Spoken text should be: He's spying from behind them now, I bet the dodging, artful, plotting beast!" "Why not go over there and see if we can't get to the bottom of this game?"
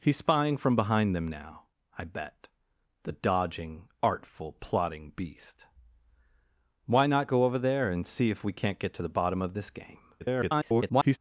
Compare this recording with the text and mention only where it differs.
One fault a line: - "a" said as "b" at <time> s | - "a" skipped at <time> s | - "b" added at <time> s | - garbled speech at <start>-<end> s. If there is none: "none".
- garbled speech at 10.2-11.2 s